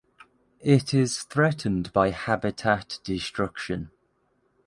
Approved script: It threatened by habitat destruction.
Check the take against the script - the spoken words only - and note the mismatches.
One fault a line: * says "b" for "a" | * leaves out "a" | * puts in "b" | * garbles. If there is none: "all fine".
* puts in "is"